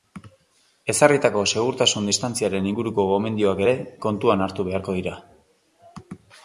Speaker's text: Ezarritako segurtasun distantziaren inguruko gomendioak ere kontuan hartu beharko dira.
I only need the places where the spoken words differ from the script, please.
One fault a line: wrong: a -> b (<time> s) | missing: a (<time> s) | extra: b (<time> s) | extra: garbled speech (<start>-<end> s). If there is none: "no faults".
no faults